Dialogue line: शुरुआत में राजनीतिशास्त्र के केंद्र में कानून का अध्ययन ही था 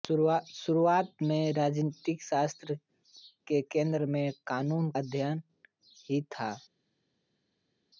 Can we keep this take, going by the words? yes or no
no